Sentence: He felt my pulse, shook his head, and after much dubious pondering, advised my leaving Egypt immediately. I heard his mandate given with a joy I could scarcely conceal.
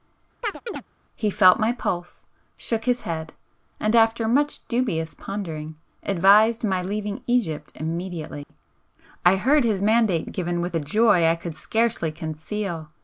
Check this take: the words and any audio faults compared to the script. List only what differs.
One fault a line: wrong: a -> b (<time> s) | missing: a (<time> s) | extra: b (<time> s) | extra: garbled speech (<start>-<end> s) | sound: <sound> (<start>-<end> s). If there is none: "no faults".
sound: chirp (0.4-0.8 s)
sound: dropout (8.4-8.5 s)